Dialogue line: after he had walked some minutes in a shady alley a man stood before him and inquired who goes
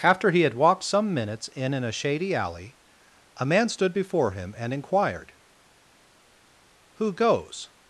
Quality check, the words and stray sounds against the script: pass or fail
fail